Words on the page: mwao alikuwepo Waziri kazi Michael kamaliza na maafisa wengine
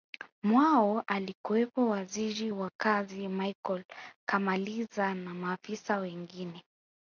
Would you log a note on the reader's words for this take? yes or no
yes